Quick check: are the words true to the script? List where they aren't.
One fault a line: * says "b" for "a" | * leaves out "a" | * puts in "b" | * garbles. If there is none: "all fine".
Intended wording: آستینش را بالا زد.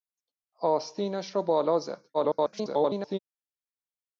* garbles